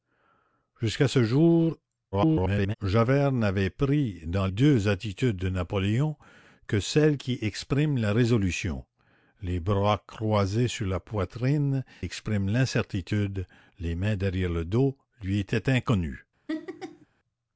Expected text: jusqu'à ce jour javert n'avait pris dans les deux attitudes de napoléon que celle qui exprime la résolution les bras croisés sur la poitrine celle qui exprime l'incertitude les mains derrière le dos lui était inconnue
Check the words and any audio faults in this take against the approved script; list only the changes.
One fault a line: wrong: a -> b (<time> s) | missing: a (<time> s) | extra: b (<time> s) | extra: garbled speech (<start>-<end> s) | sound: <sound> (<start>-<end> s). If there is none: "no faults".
extra: garbled speech (2.1-2.7 s)
missing: les (4.5 s)
missing: celle qui (11.8 s)
sound: laugh (16.5-17.1 s)